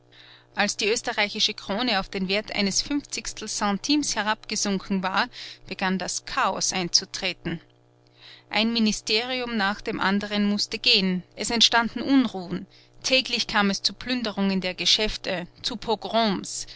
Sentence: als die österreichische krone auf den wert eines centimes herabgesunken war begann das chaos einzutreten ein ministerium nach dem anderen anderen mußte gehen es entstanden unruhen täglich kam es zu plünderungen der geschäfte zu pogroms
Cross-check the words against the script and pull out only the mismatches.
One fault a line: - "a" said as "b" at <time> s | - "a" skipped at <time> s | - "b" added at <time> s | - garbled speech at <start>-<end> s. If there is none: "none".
- "fünfzigstel" added at 2.8 s
- "anderen" skipped at 10.4 s